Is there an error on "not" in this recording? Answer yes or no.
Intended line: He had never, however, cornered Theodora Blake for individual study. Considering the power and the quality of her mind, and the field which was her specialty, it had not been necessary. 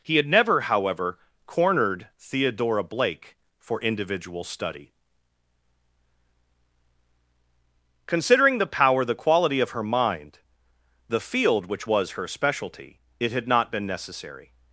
no